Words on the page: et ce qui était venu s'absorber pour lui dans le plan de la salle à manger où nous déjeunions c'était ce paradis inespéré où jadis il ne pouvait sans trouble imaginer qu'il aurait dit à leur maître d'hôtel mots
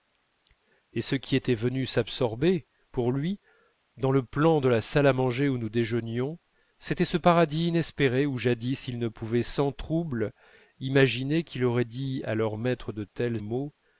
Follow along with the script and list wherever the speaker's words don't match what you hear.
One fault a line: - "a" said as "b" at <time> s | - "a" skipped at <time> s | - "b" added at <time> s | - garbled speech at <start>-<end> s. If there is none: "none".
none